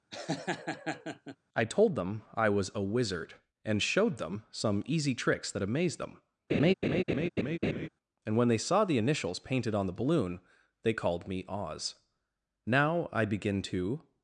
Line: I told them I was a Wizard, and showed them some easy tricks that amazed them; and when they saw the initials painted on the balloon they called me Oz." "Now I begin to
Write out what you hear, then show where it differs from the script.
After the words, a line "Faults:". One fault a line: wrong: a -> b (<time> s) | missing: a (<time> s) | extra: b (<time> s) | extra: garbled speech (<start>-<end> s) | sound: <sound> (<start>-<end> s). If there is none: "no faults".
I told them I was a Wizard, and showed them some easy tricks that amazed them; and when they saw the initials painted on the balloon they called me Oz." "Now I begin to
Faults:
sound: laugh (0.1-1.4 s)
sound: laugh (6.5-7.9 s)